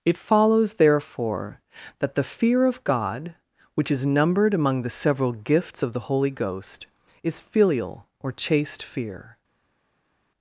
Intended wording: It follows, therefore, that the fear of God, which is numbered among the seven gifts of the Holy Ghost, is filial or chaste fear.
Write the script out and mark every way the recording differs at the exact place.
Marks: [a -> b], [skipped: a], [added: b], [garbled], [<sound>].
It follows, therefore, that the fear of God, which is numbered among the [seven -> several] gifts of the Holy Ghost, is filial or chaste fear.